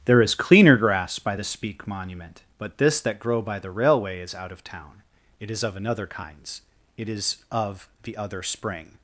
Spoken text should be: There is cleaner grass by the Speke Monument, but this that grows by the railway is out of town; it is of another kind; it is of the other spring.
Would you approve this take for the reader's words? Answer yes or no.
no